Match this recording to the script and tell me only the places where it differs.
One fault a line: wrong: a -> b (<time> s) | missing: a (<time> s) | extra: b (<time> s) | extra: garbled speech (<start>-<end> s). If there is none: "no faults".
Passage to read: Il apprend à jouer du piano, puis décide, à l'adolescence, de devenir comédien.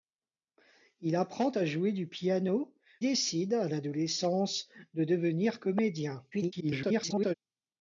missing: puis (2.8 s)
extra: garbled speech (6.3-7.3 s)